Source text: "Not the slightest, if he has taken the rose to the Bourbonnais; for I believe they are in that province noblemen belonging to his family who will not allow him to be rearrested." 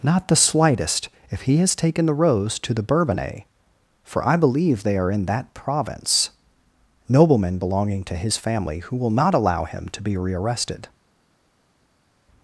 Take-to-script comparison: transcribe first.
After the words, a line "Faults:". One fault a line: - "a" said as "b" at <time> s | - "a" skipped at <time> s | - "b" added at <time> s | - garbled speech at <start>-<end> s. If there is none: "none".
"Not the slightest, if he has taken the rose to the Bourbonnais; for I believe they are in that province noblemen belonging to his family who will not allow him to be rearrested."
Faults:
none